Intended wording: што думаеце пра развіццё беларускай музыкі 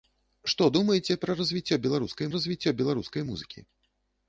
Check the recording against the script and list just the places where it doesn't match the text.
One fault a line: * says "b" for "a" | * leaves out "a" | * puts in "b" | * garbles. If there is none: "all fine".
* puts in "развіццё беларускай"